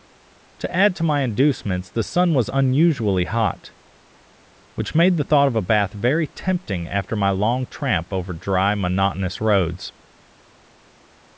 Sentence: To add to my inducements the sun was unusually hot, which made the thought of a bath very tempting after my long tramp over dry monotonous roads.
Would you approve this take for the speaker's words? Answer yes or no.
yes